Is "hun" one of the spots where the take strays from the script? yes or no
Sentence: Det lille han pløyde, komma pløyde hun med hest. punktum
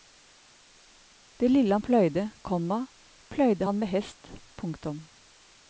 yes